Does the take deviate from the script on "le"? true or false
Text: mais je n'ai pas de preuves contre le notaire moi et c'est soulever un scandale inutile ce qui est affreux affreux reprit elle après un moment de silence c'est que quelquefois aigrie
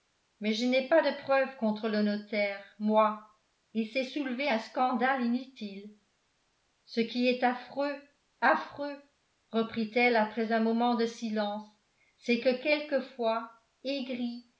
false